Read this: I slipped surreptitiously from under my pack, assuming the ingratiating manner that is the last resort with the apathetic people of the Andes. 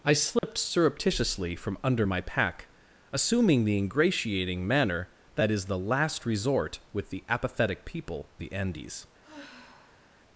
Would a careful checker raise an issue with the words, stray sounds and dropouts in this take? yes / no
yes